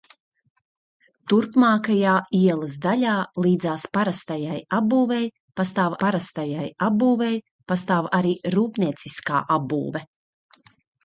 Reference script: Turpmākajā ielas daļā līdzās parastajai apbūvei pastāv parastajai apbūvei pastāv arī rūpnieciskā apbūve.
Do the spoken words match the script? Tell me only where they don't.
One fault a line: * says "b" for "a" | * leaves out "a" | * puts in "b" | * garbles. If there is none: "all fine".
all fine